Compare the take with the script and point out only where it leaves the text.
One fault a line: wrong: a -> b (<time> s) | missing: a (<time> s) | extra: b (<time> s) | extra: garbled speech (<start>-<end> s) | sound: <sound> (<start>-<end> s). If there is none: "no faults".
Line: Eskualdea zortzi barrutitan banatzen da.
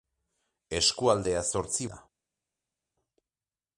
missing: barrutitan banatzen (1.9 s)